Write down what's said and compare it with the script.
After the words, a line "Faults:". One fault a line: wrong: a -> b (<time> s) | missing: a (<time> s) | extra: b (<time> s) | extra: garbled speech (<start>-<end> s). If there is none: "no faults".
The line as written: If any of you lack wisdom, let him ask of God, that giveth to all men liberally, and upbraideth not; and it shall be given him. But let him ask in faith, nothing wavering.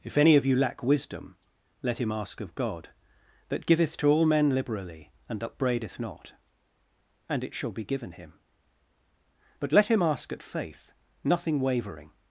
If any of you lack wisdom, let him ask of God, that giveth to all men liberally, and upbraideth not; and it shall be given him. But let him ask at faith, nothing wavering.
Faults:
wrong: in -> at (10.3 s)